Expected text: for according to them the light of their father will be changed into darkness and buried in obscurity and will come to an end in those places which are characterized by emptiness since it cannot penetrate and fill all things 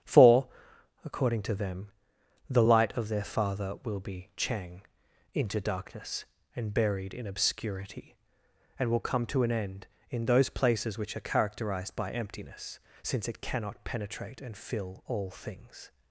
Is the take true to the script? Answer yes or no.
no